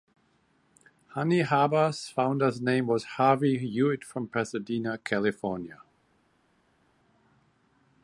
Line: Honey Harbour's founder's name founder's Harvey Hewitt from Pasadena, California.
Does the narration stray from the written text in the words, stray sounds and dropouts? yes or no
yes